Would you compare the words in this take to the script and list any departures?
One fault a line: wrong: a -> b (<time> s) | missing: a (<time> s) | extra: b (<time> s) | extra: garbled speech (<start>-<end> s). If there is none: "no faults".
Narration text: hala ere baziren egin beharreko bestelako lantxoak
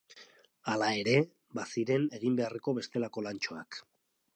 no faults